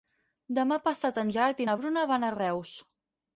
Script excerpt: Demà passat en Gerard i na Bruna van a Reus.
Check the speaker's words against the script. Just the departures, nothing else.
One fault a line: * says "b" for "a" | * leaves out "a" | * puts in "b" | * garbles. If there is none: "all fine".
all fine